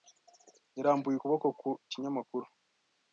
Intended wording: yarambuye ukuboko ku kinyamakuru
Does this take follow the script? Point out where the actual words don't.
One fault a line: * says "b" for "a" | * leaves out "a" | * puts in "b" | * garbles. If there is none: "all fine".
all fine